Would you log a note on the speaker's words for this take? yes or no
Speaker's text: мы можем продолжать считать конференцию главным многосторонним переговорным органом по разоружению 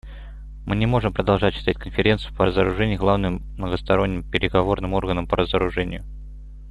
yes